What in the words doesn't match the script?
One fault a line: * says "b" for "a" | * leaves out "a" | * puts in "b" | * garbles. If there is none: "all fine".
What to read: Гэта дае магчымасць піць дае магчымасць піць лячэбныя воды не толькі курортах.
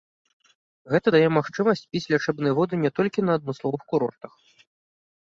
* leaves out "дае магчымасць піць"
* puts in "на адмысловых"